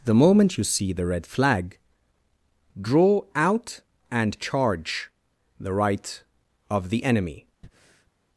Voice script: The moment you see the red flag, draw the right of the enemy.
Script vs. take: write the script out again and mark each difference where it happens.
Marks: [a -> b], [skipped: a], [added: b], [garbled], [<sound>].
The moment you see the red flag, draw [added: out and charge] the right of the enemy. [breath]